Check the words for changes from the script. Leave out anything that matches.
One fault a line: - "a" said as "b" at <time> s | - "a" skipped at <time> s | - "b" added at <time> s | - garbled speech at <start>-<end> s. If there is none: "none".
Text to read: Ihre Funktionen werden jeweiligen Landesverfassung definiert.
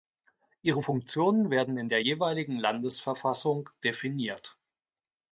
- "in der" added at 1.8 s